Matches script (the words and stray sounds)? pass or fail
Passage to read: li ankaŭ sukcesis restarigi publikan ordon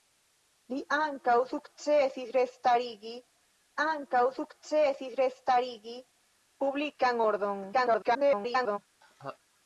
fail